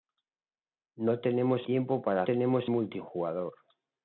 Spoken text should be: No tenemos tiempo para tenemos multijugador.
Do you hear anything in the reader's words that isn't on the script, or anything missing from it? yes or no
no